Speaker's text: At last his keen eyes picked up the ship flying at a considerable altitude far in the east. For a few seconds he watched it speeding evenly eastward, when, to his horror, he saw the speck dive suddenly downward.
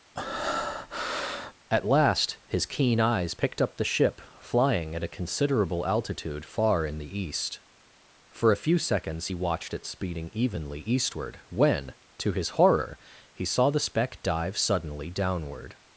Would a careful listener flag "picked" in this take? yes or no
no